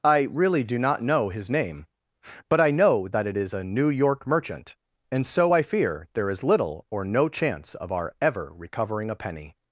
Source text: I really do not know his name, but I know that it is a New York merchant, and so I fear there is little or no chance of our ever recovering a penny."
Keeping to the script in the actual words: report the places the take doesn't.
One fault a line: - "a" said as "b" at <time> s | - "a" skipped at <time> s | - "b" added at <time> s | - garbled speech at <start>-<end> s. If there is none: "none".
none